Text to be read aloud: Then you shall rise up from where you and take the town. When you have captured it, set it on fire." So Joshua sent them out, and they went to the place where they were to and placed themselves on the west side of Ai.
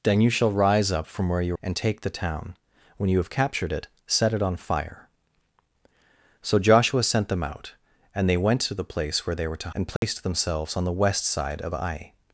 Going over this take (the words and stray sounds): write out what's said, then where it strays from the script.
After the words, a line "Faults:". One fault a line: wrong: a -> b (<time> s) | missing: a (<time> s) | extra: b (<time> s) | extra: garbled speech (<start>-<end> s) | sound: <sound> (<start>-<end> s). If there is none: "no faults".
Then you shall rise up from where you and take the town. When you have captured it, set it on fire." So Joshua sent them out, and they went to the place where they were to and placed themselves on the west side of Ai.
Faults:
sound: dropout (10.0-10.0 s)